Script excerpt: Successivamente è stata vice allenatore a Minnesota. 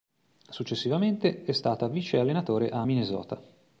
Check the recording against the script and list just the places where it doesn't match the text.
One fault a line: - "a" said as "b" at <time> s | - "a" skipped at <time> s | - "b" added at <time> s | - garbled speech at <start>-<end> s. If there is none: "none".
none